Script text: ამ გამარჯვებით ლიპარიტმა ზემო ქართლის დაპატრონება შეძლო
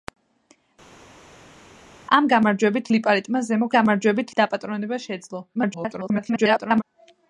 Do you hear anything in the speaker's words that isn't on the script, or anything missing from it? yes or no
yes